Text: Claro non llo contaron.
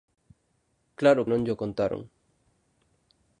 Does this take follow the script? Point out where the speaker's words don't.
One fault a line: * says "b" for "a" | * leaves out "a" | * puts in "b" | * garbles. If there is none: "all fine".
all fine